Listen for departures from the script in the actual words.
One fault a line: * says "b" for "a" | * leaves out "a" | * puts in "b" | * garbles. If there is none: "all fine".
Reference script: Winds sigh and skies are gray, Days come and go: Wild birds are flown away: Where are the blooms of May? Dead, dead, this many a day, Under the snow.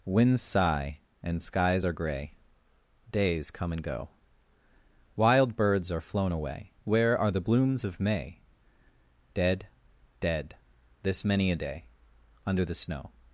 all fine